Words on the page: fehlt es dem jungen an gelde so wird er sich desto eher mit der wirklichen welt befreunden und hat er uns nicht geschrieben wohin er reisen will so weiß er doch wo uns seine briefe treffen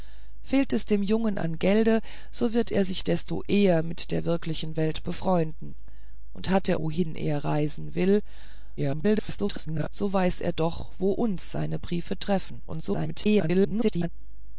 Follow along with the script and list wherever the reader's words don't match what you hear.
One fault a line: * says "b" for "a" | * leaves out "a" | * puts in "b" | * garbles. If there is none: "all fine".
* leaves out "uns nicht geschrieben"
* garbles
* garbles